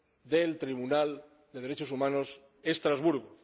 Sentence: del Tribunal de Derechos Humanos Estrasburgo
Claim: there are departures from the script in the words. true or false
false